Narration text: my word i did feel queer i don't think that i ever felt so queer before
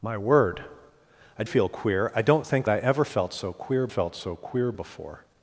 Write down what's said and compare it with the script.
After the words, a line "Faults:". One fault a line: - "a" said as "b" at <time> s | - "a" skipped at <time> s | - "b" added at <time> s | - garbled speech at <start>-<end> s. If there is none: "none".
my word i feel queer i don't think i ever felt so queer felt so queer before
Faults:
- "did" skipped at 1.4 s
- "that" skipped at 2.7 s
- "felt so queer" added at 3.9 s